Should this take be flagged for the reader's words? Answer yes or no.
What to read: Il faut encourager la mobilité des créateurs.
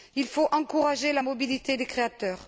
no